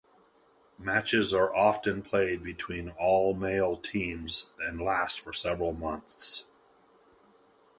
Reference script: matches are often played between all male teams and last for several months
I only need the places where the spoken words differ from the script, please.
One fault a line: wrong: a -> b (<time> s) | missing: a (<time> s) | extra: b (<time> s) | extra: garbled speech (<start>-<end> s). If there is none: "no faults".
no faults